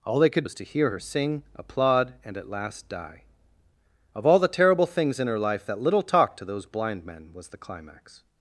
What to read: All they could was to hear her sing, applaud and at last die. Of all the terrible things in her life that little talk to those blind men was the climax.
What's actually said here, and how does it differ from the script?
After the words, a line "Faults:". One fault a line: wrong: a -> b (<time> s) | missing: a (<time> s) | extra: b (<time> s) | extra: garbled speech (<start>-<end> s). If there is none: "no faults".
All they could was to hear her sing, applaud and at last die. Of all the terrible things in her life that little talk to those blind men was the climax.
Faults:
no faults